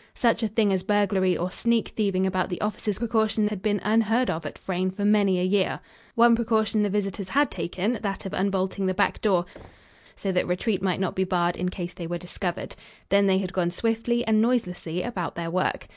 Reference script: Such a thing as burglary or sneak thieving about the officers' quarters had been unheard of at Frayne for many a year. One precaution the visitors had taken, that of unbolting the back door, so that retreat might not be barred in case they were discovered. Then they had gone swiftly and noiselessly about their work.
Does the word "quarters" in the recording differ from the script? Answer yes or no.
yes